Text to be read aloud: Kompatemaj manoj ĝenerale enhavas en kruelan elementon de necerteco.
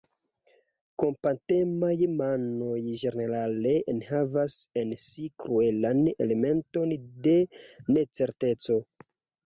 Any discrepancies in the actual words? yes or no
yes